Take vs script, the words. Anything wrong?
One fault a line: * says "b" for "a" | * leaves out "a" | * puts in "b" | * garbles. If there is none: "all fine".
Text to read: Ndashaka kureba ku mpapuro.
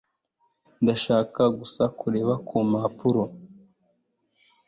* puts in "gusa"